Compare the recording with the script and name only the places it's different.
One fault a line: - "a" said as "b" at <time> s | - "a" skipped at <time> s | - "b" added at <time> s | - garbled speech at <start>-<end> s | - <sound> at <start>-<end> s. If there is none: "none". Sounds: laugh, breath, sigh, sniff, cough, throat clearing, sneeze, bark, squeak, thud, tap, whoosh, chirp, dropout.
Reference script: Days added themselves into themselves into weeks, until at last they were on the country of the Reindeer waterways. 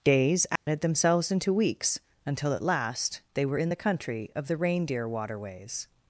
- dropout at 0.6-0.7 s
- "themselves into" skipped at 1.5 s
- "on" said as "in" at 3.6 s